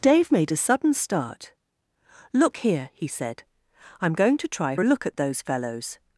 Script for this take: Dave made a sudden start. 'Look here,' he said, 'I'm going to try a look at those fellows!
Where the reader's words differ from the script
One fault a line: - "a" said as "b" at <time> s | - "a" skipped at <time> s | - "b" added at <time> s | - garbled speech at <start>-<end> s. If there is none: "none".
none